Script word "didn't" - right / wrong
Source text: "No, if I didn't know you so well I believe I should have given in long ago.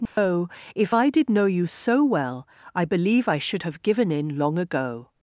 wrong